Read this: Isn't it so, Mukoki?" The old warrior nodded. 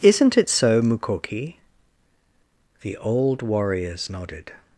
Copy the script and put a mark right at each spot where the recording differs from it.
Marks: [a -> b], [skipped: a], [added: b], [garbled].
Isn't it so, Mukoki?" The old [warrior -> warriors] nodded.